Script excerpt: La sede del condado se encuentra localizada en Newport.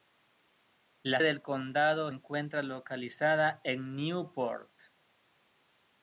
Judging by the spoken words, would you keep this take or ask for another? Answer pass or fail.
fail